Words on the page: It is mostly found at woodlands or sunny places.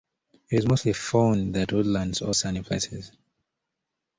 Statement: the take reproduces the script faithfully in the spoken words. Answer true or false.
true